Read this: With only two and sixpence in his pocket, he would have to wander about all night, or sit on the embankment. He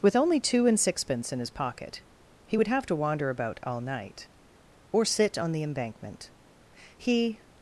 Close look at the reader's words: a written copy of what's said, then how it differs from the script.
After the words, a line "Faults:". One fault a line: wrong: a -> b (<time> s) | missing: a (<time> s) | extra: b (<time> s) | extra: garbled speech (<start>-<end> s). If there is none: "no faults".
With only two and sixpence in his pocket, he would have to wander about all night, or sit on the embankment. He
Faults:
no faults